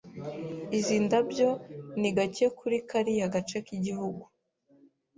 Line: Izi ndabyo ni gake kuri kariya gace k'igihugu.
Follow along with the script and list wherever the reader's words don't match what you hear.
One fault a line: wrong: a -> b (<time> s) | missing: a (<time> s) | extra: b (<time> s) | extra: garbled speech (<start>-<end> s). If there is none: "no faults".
no faults